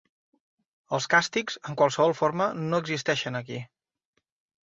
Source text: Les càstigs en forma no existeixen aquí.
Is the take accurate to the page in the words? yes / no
no